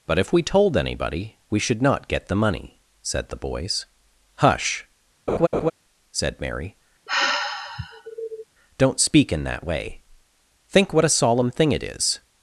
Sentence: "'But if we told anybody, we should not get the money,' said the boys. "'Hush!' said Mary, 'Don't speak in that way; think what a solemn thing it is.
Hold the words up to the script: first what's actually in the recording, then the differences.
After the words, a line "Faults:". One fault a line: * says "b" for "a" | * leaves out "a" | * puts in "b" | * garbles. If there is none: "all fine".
"'But if we told anybody, we should not get the money,' said the boys. "'Hush!' said Mary, 'Don't speak in that way; think what a solemn thing it is.
Faults:
all fine